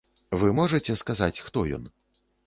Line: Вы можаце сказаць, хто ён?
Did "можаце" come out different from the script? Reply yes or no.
no